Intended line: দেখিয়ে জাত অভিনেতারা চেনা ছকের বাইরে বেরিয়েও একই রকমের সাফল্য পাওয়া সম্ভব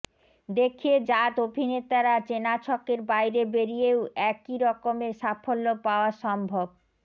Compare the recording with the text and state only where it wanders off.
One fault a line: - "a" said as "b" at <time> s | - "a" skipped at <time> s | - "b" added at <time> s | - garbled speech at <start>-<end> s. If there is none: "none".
none